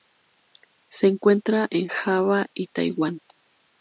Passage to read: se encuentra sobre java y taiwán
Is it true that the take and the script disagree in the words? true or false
true